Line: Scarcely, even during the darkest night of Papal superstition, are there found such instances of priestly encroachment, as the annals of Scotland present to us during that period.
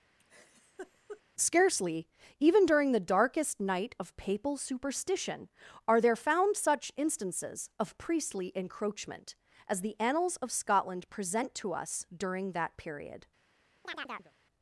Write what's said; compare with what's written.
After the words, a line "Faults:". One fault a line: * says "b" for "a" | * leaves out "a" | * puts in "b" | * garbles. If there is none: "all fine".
Scarcely, even during the darkest night of Papal superstition, are there found such instances of priestly encroachment, as the annals of Scotland present to us during that period.
Faults:
all fine